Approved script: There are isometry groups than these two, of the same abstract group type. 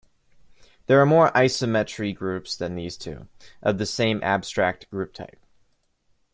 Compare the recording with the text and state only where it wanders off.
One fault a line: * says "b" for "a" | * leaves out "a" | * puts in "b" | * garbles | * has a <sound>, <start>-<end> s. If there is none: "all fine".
* puts in "more"